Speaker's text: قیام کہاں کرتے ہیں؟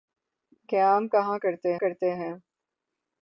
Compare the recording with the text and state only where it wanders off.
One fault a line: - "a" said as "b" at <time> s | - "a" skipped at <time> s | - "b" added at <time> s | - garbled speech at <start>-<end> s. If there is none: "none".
- "کرتے" added at 1.8 s